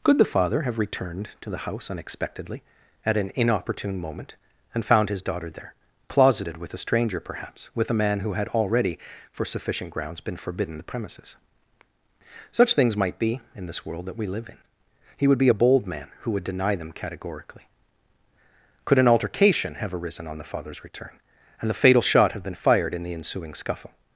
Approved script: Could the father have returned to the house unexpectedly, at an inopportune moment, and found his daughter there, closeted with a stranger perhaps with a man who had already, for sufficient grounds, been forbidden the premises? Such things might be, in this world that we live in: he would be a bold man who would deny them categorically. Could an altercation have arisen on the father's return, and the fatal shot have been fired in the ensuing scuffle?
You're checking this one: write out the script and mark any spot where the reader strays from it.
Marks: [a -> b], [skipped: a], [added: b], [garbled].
Could the father have returned to the house unexpectedly, at an inopportune moment, and found his daughter there, closeted with a stranger perhaps with a man who had already, for sufficient grounds, been forbidden the premises? Such things might be, in this world that we live in: he would be a bold man who would deny them categorically. Could an altercation have arisen on the father's return, and the fatal shot have been fired in the ensuing scuffle?